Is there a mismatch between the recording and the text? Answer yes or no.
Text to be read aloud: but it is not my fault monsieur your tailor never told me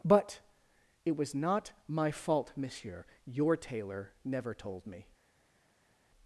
yes